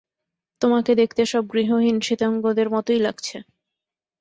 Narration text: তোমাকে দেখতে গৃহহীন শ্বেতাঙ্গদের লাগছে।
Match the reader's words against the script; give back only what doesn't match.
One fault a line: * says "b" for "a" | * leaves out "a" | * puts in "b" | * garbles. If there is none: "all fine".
* puts in "সব"
* puts in "মতোই"